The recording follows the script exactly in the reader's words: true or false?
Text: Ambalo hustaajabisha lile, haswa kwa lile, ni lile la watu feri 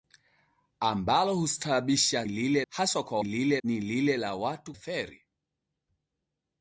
true